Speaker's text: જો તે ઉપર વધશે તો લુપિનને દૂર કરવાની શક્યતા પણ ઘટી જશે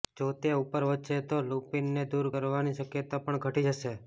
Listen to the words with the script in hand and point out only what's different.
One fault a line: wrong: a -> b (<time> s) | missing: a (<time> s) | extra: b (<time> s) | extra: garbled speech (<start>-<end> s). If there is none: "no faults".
no faults